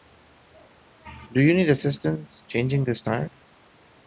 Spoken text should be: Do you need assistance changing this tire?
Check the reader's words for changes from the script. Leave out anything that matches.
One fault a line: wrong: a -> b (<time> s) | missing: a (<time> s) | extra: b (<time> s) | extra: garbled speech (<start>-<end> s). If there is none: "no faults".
no faults